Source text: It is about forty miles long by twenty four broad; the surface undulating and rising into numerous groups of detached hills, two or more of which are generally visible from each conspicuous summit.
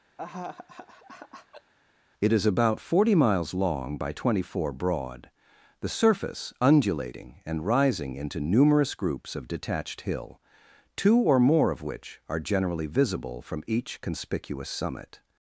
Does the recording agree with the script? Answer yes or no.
no